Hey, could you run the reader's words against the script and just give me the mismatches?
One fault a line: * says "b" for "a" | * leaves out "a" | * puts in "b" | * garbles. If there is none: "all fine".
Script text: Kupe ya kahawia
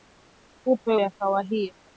all fine